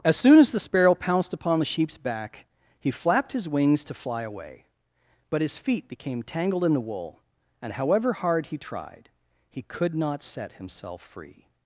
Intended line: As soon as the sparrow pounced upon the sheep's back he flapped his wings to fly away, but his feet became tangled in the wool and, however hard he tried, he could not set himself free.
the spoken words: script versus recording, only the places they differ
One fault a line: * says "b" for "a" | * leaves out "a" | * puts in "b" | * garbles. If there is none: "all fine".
all fine